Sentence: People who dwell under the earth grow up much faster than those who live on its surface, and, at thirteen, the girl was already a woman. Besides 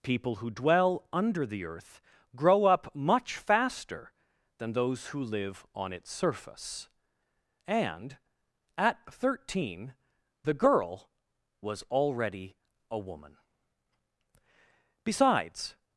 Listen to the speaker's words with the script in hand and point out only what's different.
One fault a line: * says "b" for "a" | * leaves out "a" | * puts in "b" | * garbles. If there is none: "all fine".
all fine